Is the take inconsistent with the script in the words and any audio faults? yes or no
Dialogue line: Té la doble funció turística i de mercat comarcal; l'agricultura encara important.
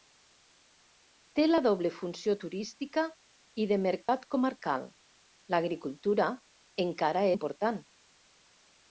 yes